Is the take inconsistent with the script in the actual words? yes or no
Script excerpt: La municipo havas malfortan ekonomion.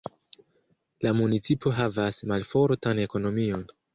no